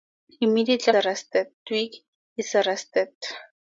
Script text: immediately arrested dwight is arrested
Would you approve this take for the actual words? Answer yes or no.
yes